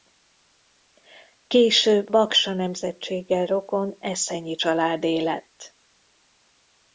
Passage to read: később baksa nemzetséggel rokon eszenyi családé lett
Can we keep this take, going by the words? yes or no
yes